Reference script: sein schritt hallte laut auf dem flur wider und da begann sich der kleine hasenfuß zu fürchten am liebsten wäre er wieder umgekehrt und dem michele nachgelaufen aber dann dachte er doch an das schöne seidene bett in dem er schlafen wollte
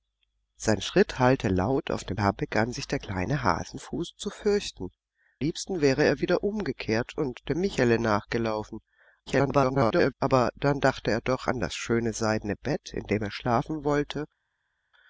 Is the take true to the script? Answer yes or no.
no